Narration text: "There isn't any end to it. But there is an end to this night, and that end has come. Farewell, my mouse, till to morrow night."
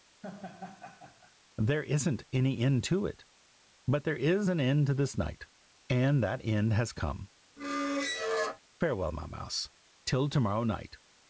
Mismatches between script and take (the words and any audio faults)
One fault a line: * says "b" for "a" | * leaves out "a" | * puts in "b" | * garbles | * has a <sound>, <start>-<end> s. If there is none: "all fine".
* has a laugh, 0.2-1.4 s
* has a squeak, 7.6-8.6 s